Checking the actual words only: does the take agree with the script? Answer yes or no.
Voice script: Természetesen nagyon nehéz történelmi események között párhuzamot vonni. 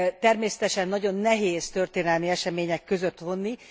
no